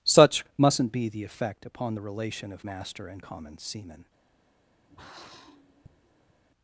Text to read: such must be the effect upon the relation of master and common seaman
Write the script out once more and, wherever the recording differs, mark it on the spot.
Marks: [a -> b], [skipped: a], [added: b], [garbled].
such [must -> mustn't] be the effect upon the relation of master and common seaman